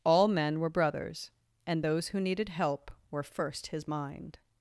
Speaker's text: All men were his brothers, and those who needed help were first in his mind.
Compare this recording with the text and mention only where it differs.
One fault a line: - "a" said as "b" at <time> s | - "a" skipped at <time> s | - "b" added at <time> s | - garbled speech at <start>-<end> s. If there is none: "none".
- "his" skipped at 0.7 s
- "in" skipped at 3.7 s